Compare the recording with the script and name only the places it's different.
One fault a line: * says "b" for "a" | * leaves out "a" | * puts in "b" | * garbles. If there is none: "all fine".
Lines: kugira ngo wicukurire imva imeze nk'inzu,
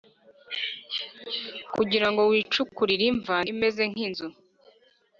all fine